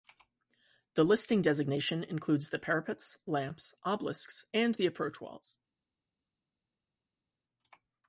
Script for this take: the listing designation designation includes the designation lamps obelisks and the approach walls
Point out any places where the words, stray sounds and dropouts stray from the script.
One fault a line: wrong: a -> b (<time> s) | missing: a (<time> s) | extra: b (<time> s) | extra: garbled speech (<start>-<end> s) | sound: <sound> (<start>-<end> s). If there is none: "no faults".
missing: designation (2.0 s)
wrong: designation -> parapets (2.6 s)